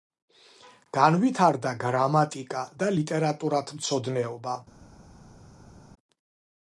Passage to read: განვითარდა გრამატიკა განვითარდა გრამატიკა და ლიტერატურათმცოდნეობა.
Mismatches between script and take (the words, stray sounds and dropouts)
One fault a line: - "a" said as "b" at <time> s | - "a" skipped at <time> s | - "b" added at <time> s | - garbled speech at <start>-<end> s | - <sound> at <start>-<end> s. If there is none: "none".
- "განვითარდა გრამატიკა" skipped at 2.6 s